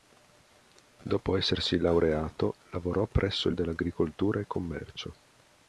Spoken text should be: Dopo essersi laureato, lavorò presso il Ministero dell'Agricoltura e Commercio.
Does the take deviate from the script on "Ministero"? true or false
true